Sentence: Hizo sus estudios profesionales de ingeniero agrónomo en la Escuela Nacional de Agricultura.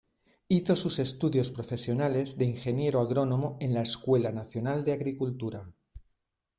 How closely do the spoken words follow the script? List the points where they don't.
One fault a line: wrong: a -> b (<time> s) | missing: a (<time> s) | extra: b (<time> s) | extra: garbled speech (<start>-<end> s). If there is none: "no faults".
no faults